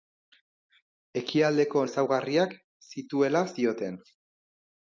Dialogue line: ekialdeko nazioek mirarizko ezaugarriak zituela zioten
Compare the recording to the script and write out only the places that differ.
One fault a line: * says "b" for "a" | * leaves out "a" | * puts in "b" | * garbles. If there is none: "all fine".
* leaves out "nazioek mirarizko"